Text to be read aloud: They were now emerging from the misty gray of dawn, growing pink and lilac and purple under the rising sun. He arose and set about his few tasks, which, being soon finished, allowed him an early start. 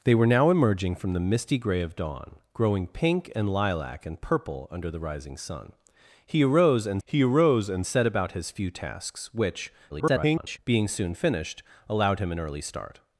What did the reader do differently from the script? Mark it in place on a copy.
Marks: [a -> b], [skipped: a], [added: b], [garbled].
They were now emerging from the misty gray of dawn, growing pink and lilac and purple under the rising sun. He arose and [added: he arose and] set about his few tasks, which, [garbled] being soon finished, allowed him an early start.